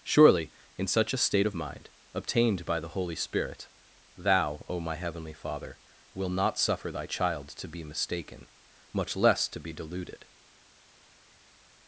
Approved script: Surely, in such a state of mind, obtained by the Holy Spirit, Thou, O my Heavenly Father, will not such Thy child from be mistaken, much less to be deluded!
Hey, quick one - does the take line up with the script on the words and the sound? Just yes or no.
no